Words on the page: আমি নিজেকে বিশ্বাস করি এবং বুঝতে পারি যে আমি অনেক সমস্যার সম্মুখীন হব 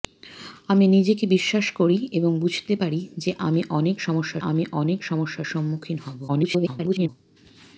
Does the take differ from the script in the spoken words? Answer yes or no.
yes